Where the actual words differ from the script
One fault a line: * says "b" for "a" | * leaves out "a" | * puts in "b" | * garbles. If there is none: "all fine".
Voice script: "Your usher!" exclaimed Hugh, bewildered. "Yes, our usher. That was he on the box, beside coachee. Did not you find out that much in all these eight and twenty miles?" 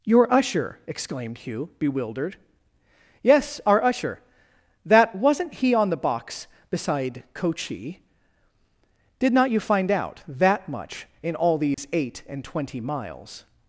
* says "wasn't" for "was"